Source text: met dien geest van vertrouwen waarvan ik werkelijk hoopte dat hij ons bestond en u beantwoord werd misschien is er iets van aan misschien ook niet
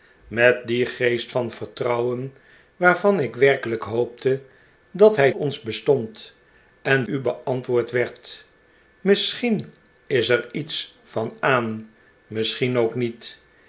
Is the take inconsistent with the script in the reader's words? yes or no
no